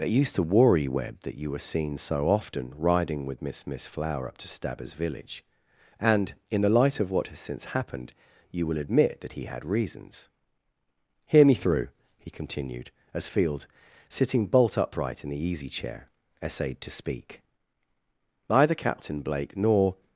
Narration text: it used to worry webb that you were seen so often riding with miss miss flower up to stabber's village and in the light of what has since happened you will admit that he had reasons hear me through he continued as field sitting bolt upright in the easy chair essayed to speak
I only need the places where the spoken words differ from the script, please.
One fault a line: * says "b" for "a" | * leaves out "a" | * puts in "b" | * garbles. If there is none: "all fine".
* puts in "neither captain blake nor"